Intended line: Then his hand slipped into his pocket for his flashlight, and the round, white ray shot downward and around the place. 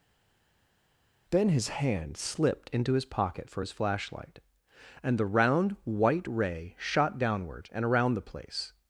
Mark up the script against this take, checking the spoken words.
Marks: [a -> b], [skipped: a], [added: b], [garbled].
Then his hand slipped into his pocket for his flashlight, and the round, white ray shot downward and around the place.